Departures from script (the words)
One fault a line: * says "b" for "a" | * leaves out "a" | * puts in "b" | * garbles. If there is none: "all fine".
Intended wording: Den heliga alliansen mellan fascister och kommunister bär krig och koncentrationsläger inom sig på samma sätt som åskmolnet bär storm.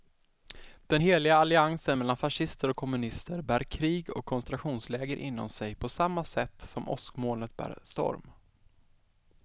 all fine